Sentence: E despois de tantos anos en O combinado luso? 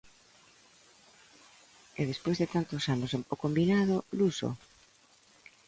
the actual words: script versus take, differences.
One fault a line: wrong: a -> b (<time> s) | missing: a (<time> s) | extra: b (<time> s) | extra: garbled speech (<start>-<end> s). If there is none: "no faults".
no faults